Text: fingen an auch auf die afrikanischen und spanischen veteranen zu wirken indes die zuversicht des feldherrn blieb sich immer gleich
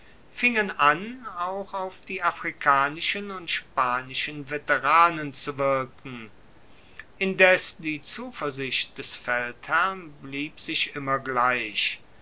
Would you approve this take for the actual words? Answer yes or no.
yes